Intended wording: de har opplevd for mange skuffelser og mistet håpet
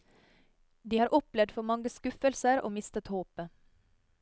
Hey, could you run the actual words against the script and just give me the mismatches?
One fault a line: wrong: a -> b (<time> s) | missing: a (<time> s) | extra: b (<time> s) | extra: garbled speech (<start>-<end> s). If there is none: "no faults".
no faults